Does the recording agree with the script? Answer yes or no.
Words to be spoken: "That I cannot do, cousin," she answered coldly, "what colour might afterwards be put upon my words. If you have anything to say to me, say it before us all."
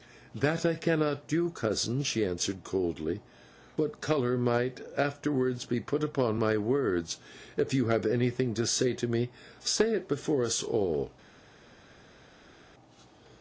yes